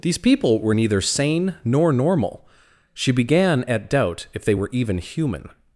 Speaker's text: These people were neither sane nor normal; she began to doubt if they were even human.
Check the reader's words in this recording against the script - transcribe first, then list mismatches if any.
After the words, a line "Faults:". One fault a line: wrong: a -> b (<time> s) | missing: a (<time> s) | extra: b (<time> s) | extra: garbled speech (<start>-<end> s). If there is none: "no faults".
These people were neither sane nor normal; she began at doubt if they were even human.
Faults:
wrong: to -> at (3.6 s)